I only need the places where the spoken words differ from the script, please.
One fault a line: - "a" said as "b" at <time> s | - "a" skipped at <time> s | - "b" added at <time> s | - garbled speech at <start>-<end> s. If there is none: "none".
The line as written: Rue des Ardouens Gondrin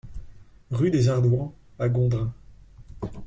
- "à" added at 1.8 s